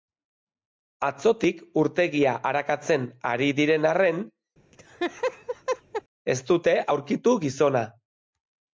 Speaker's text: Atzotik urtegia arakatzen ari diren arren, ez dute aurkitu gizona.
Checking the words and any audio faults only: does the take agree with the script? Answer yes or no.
no